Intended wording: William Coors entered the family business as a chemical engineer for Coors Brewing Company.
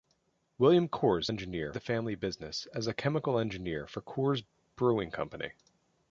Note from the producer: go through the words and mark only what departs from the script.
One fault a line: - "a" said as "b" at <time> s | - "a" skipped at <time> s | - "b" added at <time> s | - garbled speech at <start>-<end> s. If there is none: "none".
- "entered" said as "engineer" at 1.3 s